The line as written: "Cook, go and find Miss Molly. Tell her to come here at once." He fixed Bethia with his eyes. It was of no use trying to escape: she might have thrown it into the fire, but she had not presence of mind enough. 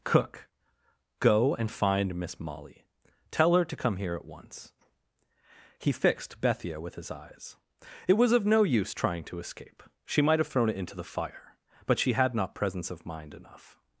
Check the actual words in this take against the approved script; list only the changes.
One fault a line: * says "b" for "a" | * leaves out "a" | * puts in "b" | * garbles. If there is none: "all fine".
all fine